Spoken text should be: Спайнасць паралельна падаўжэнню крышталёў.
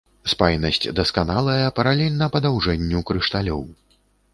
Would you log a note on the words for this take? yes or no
yes